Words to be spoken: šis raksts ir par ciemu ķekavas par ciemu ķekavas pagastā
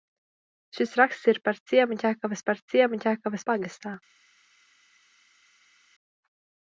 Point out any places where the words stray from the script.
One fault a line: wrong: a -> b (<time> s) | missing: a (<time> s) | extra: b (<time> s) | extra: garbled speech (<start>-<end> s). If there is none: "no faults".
no faults